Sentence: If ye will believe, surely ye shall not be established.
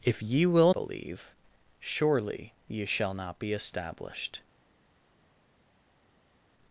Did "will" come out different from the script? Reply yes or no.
no